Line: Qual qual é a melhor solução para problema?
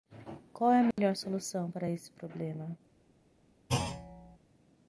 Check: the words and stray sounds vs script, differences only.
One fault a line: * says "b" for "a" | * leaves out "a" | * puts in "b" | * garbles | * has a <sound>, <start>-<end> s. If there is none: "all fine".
* leaves out "qual"
* has a dropout, 0.9-1.0 s
* puts in "esse"
* has a thud, 3.7-4.4 s